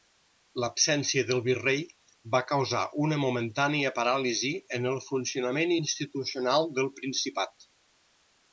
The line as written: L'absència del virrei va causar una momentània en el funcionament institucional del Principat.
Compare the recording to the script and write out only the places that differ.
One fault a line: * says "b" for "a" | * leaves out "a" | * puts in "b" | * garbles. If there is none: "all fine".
* puts in "paràlisi"